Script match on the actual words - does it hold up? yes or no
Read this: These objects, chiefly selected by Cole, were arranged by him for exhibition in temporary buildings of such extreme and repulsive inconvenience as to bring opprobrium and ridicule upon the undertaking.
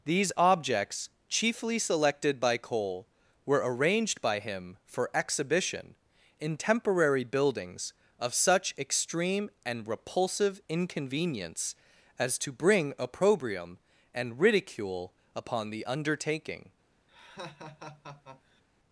yes